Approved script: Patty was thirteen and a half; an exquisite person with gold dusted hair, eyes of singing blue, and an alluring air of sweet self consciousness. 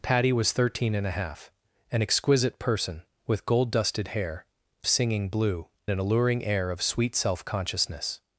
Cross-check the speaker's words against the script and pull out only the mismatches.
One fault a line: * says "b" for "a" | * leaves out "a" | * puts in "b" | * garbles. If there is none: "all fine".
* leaves out "eyes of"
* leaves out "and"